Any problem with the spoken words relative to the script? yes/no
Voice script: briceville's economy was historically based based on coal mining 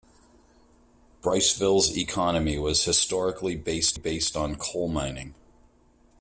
no